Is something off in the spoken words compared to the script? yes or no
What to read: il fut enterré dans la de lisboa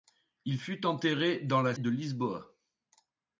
no